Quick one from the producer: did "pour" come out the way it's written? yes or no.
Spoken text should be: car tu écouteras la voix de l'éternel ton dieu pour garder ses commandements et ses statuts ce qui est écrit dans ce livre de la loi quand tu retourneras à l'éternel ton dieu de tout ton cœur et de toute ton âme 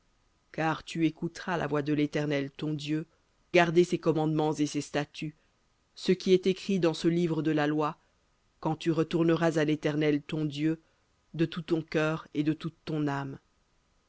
no